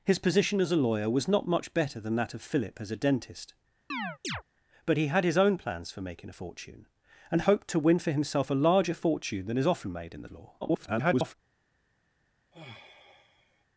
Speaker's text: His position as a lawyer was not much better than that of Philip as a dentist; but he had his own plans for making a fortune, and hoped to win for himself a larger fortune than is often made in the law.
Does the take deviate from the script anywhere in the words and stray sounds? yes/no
yes